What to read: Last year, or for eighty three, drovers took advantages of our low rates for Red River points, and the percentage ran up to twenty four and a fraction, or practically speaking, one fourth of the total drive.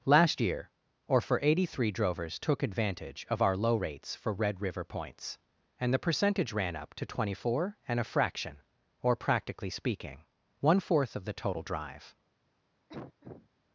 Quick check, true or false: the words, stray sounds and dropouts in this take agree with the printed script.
false